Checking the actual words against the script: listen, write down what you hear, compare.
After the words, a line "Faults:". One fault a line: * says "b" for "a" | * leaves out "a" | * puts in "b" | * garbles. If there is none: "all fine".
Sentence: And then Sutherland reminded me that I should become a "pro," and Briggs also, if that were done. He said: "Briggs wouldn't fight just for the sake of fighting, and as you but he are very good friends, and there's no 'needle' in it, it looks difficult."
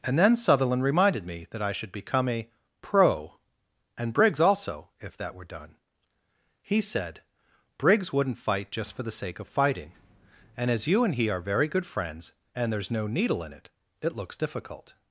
And then Sutherland reminded me that I should become a "pro," and Briggs also, if that were done. He said: "Briggs wouldn't fight just for the sake of fighting, and as you and he are very good friends, and there's no 'needle' in it, it looks difficult."
Faults:
* says "and" for "but"